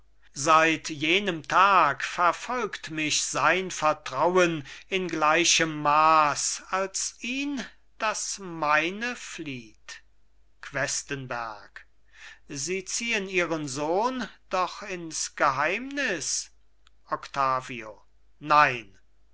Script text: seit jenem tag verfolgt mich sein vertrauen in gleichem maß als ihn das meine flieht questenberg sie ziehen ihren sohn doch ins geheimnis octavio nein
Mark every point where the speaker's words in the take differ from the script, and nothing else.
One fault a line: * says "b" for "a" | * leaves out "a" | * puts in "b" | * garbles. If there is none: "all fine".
all fine